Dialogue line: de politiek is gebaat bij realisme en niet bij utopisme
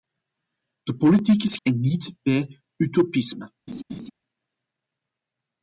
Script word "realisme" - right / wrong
wrong